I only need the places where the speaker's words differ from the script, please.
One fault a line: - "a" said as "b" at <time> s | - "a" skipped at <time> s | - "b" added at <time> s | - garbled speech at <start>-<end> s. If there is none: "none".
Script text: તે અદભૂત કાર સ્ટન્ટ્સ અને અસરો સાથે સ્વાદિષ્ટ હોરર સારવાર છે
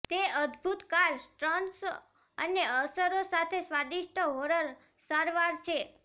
none